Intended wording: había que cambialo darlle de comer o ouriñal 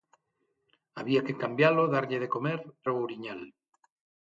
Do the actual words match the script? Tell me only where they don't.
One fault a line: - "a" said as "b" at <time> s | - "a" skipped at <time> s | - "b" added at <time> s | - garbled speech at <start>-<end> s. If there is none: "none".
none